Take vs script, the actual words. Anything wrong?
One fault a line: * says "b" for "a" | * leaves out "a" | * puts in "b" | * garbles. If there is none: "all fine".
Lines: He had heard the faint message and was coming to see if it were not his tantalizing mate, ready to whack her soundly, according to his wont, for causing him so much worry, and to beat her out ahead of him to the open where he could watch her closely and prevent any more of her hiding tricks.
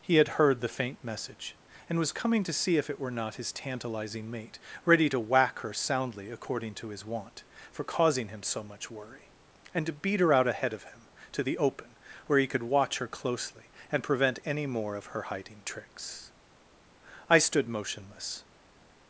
* puts in "I stood motionless"